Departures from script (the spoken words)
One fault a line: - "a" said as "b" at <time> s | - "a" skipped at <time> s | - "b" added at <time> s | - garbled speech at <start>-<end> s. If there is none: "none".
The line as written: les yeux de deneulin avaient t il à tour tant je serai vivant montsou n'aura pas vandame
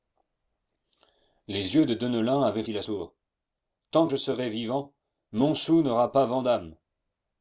none